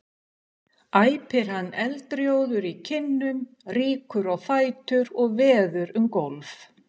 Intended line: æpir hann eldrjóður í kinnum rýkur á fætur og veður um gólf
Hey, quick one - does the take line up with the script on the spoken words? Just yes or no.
yes